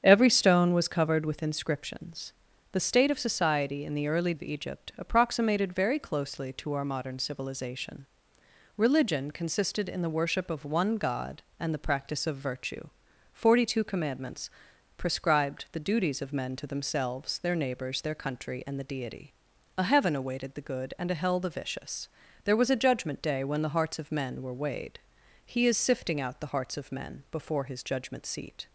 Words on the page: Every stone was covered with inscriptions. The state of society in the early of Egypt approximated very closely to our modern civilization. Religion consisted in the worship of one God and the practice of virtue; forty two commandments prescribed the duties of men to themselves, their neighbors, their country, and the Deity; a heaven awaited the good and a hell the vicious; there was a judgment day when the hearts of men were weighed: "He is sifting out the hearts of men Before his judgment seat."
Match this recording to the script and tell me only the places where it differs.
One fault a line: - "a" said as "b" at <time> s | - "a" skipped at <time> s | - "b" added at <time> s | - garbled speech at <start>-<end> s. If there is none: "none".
none